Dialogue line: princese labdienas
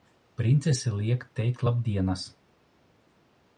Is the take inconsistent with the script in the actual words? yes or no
yes